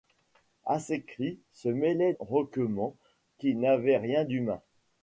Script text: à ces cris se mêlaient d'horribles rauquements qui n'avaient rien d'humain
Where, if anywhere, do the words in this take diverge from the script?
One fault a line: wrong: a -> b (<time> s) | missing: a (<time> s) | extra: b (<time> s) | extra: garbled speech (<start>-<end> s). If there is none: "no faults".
missing: d'horribles (2.1 s)